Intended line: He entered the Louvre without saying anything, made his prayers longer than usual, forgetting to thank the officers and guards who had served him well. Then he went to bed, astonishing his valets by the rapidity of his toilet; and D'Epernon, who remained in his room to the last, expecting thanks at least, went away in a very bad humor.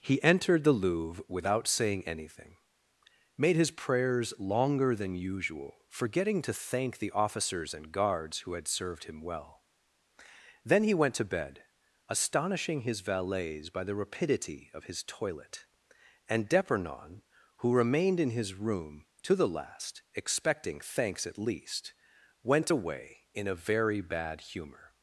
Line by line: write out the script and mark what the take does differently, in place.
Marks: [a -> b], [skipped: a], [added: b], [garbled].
He entered the Louvre without saying anything, made his prayers longer than usual, forgetting to thank the officers and guards who had served him well. Then he went to bed, astonishing his valets by the rapidity of his toilet; and D'Epernon, who remained in his room to the last, expecting thanks at least, went away in a very bad humor.